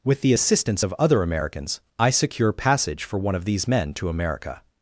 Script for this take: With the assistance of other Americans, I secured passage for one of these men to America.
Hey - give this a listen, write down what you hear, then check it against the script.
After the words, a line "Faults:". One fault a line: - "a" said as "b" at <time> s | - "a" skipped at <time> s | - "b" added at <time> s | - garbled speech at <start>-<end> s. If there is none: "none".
With the assistance of other Americans, I secure passage for one of these men to America.
Faults:
- "secured" said as "secure" at 2.1 s